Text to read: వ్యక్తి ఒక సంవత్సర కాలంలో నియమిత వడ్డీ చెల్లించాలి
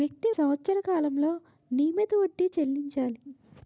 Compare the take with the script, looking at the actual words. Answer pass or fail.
fail